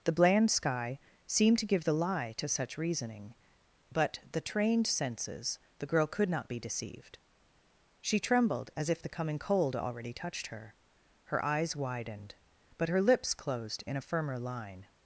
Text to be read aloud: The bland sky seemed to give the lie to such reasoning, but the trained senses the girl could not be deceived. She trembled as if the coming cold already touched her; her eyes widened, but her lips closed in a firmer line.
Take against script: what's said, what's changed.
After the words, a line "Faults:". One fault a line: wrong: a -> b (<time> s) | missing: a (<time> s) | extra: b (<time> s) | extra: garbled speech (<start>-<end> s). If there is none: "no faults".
The bland sky seemed to give the lie to such reasoning, but the trained senses the girl could not be deceived. She trembled as if the coming cold already touched her; her eyes widened, but her lips closed in a firmer line.
Faults:
no faults